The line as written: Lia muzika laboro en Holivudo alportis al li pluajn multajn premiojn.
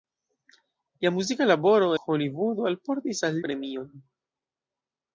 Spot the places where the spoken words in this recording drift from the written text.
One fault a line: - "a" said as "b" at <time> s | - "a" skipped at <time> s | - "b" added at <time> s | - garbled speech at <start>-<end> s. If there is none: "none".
- "en" skipped at 1.9 s
- "li pluajn multajn" skipped at 3.4 s